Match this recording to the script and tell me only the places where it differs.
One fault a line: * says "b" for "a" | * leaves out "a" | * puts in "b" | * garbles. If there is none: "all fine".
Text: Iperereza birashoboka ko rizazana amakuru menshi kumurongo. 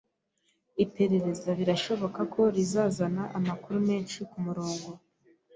all fine